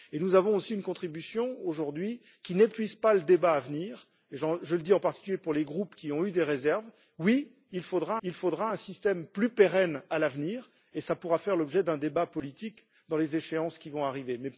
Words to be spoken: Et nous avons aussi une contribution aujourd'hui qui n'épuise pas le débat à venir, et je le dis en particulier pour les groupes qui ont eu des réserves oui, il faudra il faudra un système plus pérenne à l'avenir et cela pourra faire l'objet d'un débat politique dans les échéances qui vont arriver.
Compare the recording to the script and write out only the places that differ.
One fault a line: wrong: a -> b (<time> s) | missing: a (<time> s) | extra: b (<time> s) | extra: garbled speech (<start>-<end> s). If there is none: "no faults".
no faults